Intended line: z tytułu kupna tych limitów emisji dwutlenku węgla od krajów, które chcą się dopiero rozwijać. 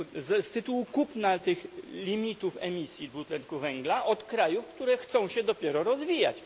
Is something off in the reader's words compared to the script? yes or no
no